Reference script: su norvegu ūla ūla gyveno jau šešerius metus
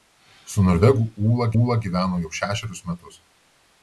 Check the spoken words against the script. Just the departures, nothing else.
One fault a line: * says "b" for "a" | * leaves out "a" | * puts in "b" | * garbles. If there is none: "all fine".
all fine